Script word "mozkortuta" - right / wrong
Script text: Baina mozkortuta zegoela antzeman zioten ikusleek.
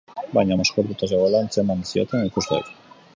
right